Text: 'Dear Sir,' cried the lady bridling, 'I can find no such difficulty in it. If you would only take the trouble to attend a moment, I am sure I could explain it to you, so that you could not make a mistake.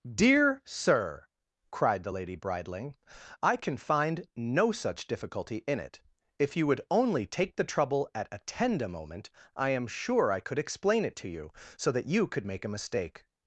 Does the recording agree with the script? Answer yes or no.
no